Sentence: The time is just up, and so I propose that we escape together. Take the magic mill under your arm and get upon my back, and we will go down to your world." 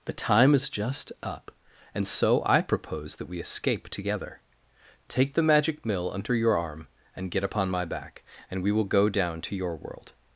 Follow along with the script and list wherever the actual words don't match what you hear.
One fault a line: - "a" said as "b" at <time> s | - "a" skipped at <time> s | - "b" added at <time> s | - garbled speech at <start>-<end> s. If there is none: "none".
none